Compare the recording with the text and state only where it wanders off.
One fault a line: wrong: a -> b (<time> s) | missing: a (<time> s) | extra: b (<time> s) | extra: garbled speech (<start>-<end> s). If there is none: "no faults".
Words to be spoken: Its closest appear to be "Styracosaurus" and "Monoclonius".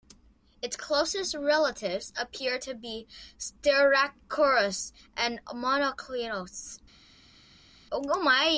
extra: relatives (1.4 s)